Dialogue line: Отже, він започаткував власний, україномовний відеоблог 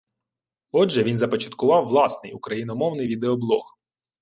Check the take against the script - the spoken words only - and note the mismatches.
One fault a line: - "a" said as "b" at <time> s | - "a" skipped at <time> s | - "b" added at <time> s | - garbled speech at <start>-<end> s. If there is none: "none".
none